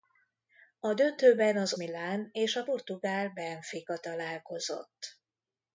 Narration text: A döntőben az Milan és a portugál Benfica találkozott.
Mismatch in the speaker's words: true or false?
false